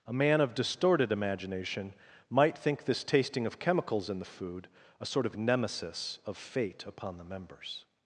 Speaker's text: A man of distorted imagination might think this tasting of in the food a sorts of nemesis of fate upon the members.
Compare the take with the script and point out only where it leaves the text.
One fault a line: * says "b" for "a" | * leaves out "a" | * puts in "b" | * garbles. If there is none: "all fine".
* puts in "chemicals"
* says "sort" for "sorts"